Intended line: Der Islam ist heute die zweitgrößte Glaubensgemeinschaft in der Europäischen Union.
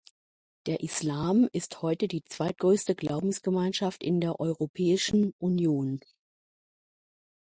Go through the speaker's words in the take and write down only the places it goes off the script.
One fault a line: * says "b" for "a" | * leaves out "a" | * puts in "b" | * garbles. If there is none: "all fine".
all fine